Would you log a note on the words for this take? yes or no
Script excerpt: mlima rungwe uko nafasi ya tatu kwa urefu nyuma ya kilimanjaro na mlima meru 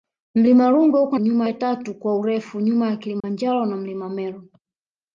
yes